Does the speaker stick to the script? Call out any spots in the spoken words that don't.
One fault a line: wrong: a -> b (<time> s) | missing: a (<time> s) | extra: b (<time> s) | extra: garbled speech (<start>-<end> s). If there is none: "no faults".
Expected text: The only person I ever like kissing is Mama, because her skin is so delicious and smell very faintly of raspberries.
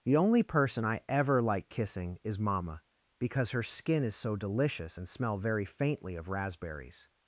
no faults